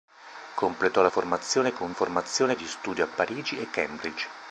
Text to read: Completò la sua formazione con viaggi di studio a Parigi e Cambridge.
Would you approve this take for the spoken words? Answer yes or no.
no